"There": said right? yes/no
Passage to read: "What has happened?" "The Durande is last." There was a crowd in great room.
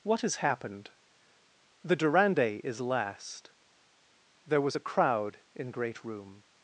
yes